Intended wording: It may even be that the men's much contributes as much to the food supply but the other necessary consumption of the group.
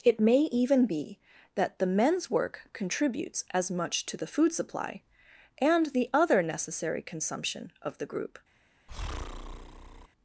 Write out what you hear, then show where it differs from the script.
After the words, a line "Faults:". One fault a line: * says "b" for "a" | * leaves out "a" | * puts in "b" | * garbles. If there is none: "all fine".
It may even be that the men's work contributes as much to the food supply and the other necessary consumption of the group.
Faults:
* says "work" for "much"
* says "and" for "but"